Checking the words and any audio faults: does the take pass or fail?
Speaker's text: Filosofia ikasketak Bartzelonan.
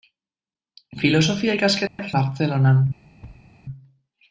fail